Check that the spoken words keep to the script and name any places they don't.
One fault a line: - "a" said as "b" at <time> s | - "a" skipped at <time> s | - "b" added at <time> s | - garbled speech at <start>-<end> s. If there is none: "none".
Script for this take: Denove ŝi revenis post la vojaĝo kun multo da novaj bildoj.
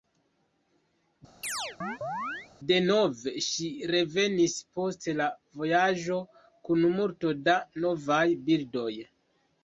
none